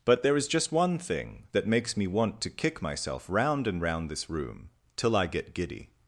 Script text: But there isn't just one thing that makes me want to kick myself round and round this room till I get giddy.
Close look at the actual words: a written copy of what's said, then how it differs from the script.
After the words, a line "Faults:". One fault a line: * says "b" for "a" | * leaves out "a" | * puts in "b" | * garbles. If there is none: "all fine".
But there is just one thing that makes me want to kick myself round and round this room till I get giddy.
Faults:
* says "is" for "isn't"